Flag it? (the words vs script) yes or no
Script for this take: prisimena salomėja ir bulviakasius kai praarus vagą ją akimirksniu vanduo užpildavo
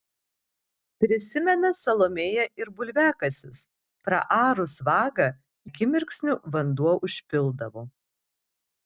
yes